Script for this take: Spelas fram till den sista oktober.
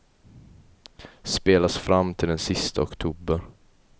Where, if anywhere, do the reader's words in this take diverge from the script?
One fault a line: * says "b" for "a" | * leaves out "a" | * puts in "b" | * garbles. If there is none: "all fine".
all fine